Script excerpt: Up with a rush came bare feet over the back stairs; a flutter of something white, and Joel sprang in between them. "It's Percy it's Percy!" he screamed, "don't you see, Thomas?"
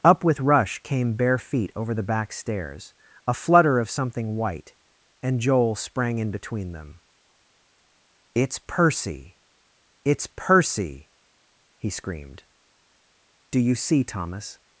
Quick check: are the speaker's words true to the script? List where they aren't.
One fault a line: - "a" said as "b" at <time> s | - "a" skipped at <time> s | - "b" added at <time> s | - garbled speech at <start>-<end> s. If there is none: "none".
- "a" skipped at 0.4 s
- "don't" said as "do" at 13.5 s